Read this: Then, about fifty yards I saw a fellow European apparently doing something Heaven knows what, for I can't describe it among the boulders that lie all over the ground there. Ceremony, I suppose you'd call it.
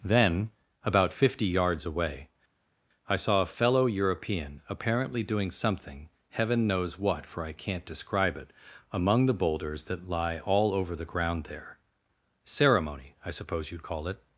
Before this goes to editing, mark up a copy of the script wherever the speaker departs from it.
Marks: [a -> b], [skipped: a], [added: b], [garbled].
Then, about fifty yards [added: away] I saw a fellow European apparently doing something Heaven knows what, for I can't describe it among the boulders that lie all over the ground there. Ceremony, I suppose you'd call it.